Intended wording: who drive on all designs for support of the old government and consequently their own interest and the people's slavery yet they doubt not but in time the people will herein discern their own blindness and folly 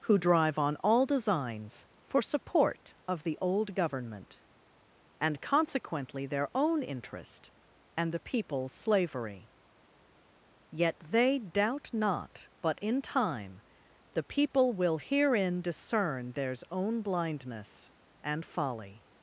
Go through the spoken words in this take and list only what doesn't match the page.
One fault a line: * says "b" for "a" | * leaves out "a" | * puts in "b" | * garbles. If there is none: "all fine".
* says "theirs" for "their"